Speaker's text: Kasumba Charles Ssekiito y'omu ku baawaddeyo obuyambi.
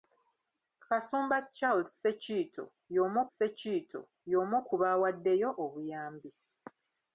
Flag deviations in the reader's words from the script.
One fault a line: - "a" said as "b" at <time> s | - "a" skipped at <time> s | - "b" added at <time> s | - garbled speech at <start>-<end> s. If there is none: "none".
- "Ssekiito y'omu" added at 3.3 s